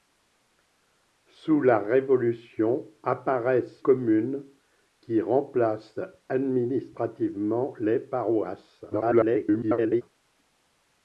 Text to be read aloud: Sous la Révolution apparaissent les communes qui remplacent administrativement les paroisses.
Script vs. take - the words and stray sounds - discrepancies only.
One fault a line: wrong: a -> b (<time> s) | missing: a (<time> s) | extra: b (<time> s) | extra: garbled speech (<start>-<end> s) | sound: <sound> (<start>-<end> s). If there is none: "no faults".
missing: les (3.9 s)
extra: garbled speech (8.9-10.0 s)